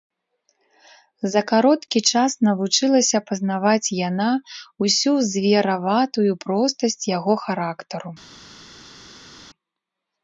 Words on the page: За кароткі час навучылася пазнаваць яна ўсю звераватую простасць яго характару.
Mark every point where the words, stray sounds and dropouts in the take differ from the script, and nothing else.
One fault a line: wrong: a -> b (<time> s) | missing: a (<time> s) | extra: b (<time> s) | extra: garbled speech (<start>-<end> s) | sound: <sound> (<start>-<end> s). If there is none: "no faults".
no faults